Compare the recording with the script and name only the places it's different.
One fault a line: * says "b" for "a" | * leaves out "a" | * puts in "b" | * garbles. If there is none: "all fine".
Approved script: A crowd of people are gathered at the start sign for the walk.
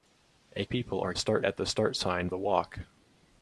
* leaves out "crowd of"
* says "start" for "gathered"
* leaves out "for"